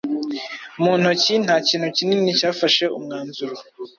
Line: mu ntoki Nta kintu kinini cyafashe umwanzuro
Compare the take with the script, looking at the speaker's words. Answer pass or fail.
pass